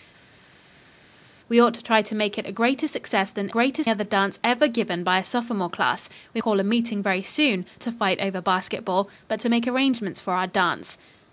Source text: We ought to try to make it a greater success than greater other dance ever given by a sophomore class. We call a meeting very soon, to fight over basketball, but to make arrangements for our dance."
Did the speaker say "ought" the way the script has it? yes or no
yes